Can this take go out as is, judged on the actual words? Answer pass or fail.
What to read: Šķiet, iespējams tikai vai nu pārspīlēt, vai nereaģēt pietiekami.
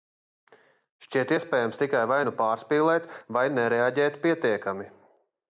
pass